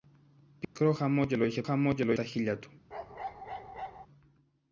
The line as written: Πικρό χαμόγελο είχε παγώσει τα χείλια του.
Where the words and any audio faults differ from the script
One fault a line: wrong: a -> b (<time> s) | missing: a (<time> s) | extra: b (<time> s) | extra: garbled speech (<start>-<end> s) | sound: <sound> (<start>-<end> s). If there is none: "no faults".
sound: dropout (0.6-0.8 s)
wrong: παγώσει -> χαμόγελο (1.6 s)
sound: bark (2.9-4.1 s)